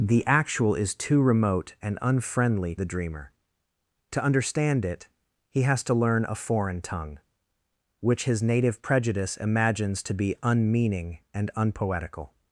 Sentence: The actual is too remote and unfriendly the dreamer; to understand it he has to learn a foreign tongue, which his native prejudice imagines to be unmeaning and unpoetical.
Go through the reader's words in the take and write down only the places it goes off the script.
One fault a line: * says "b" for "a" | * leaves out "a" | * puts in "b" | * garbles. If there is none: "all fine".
all fine